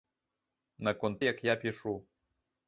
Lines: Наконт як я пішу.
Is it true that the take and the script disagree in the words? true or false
false